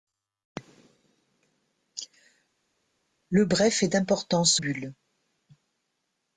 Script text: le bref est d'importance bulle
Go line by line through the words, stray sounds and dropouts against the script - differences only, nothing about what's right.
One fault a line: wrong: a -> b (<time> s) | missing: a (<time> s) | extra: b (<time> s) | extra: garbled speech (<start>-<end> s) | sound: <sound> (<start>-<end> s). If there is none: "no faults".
no faults